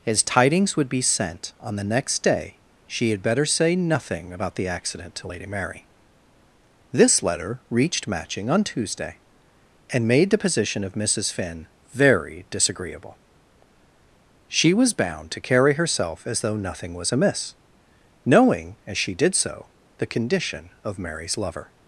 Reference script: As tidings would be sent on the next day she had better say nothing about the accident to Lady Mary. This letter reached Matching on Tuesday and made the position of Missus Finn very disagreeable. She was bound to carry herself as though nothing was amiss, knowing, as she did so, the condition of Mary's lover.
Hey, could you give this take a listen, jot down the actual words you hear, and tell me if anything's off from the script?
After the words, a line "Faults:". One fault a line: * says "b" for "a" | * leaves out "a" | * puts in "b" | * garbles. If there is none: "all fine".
As tidings would be sent on the next day she had better say nothing about the accident to Lady Mary. This letter reached Matching on Tuesday and made the position of Missus Finn very disagreeable. She was bound to carry herself as though nothing was amiss, knowing, as she did so, the condition of Mary's lover.
Faults:
all fine